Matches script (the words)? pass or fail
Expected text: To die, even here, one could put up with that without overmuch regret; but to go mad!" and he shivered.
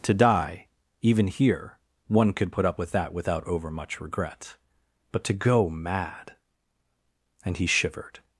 pass